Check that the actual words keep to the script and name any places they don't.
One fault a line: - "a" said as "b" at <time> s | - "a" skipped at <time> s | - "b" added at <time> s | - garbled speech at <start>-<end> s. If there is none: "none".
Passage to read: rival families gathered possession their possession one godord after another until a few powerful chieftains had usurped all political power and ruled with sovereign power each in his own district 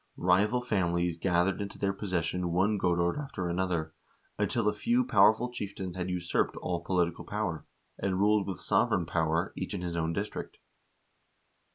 - "possession" said as "into" at 1.6 s